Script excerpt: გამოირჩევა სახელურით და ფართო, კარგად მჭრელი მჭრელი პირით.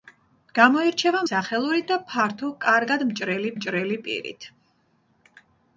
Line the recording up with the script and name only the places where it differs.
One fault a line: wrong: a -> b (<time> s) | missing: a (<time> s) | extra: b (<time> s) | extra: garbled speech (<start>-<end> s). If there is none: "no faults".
no faults